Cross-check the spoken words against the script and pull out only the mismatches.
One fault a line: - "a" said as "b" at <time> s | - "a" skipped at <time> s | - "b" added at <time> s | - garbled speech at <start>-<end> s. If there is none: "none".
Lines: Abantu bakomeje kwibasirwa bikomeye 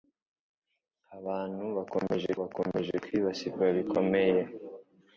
- "bakomeje" added at 2.4 s